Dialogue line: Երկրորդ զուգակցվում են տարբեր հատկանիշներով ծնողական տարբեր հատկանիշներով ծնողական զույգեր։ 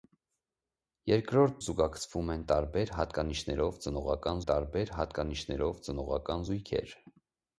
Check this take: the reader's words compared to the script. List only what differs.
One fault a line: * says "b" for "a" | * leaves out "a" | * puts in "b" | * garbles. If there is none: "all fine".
all fine